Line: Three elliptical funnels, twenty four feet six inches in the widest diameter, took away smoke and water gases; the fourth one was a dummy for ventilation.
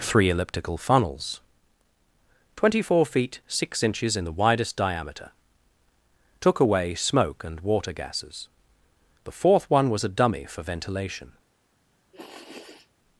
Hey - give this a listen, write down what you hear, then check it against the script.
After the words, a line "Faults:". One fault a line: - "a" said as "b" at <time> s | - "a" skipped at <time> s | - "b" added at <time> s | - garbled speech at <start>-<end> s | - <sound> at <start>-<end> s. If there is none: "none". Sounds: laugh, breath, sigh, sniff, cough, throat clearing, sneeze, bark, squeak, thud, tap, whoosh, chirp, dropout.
Three elliptical funnels, twenty four feet six inches in the widest diameter, took away smoke and water gases; the fourth one was a dummy for ventilation.
Faults:
- sniff at 12.1-12.9 s